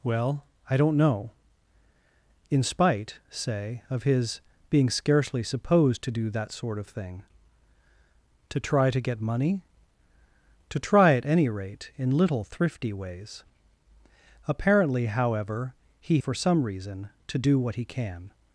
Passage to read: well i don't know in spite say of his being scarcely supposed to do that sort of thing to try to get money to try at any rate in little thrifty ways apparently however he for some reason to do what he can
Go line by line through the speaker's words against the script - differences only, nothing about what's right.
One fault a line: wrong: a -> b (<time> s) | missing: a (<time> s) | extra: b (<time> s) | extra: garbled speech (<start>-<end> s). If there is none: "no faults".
no faults